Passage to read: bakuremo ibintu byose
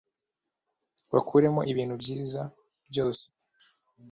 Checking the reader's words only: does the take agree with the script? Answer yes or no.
no